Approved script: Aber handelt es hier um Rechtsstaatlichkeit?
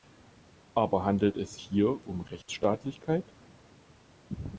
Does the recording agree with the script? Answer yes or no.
yes